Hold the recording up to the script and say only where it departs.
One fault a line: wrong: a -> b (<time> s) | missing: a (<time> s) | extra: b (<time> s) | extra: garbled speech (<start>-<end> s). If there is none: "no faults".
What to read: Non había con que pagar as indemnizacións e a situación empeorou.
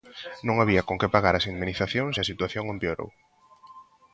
no faults